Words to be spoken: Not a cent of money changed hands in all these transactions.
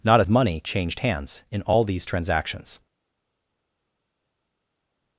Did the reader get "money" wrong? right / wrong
right